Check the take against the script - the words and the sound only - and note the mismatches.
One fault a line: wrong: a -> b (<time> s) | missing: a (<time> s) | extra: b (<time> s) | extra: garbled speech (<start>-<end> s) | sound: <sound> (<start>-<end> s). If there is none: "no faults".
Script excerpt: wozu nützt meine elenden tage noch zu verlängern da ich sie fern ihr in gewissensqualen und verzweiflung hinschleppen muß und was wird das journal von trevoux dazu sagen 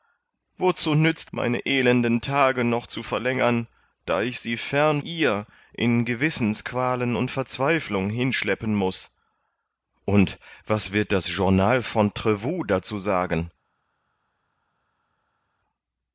no faults